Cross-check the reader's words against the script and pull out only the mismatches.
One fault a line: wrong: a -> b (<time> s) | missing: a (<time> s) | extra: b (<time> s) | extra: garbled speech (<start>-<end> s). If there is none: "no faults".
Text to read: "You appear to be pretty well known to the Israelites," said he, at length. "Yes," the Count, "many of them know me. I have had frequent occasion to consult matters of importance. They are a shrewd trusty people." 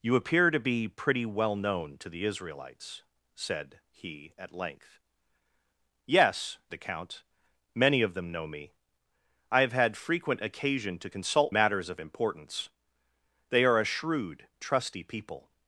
no faults